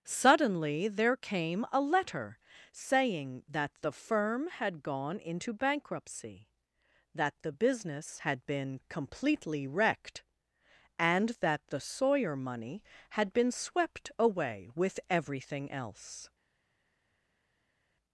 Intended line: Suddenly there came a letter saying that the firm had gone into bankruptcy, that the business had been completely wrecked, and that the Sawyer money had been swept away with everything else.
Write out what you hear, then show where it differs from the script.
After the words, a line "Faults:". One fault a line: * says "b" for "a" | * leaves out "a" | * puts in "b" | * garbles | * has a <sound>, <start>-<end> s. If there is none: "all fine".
Suddenly there came a letter saying that the firm had gone into bankruptcy, that the business had been completely wrecked, and that the Sawyer money had been swept away with everything else.
Faults:
all fine